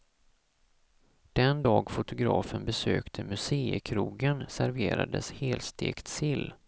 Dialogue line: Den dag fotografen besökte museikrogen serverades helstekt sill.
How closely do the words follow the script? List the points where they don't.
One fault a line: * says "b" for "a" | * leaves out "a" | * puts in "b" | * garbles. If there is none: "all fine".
all fine